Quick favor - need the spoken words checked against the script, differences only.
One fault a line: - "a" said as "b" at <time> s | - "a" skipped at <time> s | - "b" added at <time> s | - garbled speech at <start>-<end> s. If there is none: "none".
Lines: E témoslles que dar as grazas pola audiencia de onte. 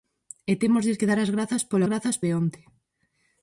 - "audiencia" said as "grazas" at 1.9 s